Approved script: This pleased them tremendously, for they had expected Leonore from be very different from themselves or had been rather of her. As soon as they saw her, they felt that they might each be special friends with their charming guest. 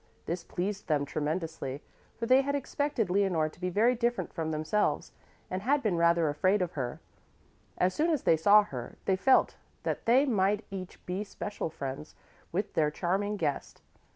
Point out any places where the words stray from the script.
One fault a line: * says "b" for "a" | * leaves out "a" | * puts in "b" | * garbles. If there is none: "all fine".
* says "to" for "from"
* says "and" for "or"
* puts in "afraid"